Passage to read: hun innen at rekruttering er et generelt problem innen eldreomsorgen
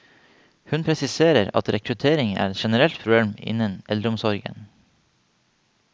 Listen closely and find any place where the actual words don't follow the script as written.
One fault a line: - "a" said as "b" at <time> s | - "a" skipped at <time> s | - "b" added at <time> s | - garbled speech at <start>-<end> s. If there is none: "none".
- "innen" said as "presiserer" at 0.8 s